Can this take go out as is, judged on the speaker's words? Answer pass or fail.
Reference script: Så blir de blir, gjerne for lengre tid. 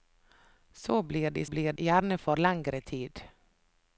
pass